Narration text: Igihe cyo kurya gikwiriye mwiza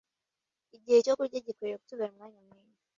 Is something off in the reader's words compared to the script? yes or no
yes